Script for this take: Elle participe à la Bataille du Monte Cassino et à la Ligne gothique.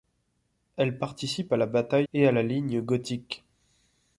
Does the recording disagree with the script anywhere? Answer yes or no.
yes